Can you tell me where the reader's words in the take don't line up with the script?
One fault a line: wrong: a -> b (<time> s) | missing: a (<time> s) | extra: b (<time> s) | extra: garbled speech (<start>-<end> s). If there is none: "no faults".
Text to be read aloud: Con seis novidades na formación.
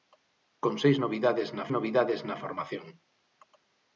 extra: novidades na (1.8 s)